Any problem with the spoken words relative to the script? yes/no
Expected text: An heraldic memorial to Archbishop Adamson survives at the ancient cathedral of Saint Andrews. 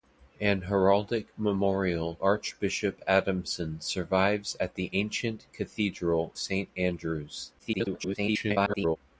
yes